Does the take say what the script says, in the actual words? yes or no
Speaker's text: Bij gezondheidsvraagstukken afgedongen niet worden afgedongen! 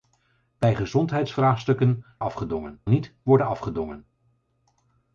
yes